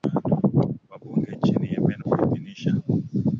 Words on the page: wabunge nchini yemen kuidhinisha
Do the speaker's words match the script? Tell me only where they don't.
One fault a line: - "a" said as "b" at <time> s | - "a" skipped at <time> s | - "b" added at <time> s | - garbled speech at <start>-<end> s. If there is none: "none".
none